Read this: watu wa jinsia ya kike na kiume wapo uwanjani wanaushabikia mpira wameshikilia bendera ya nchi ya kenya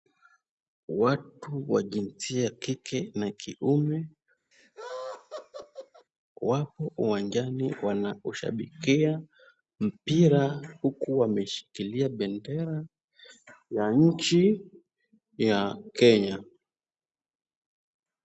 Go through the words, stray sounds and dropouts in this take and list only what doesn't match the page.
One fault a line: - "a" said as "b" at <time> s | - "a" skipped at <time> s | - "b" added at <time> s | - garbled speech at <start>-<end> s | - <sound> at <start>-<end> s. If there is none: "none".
- laugh at 4.5-6.1 s
- "huku" added at 10.8 s